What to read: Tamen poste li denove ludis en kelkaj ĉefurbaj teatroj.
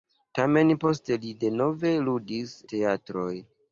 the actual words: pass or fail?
fail